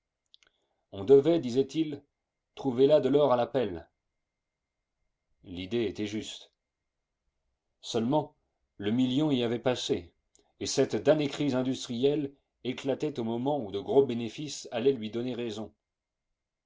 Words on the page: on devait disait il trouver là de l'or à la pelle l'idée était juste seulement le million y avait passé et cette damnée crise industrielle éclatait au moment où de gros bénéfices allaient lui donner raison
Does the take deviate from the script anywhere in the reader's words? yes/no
no